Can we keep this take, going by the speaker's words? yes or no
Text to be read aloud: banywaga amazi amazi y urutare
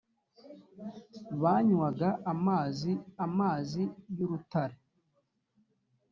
yes